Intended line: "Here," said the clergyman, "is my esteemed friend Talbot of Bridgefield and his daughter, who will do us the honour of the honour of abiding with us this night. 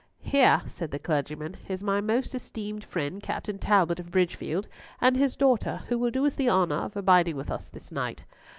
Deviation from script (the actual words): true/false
true